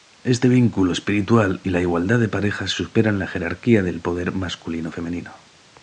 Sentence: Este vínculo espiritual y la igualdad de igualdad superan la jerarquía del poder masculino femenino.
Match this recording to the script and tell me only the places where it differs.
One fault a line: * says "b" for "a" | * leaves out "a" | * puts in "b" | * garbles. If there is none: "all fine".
* says "parejas" for "igualdad"